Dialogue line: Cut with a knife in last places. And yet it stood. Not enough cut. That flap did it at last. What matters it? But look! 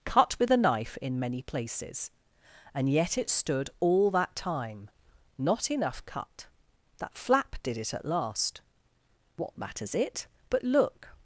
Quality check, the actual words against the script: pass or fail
fail